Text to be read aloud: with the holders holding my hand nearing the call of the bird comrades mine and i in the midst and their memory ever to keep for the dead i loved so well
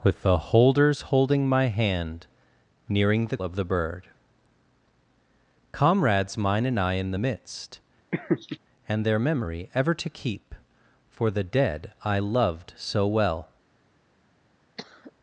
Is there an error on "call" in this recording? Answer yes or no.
yes